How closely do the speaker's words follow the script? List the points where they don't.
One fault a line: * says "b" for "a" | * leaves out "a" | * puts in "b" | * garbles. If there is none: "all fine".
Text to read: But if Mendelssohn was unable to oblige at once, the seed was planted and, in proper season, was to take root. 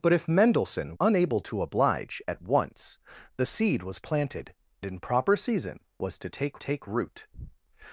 * leaves out "was"
* leaves out "and"
* puts in "take"